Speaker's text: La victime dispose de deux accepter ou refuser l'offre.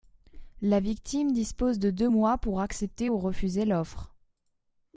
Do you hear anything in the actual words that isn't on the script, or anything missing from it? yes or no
yes